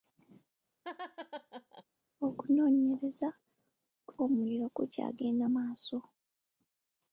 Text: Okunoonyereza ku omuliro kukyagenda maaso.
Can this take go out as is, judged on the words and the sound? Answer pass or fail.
fail